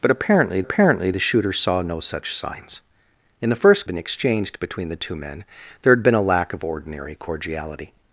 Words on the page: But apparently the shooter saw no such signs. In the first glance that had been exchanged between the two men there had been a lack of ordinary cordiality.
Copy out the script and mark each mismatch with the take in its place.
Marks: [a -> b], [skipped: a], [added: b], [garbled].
But apparently [added: apparently] the shooter saw no such signs. In the first [skipped: glance that had] been exchanged between the two men there had been a lack of ordinary cordiality.